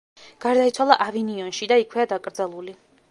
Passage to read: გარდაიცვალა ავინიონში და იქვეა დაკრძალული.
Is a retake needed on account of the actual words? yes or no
no